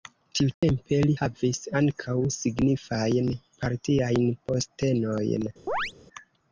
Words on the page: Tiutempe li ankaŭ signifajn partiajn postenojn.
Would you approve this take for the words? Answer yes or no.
no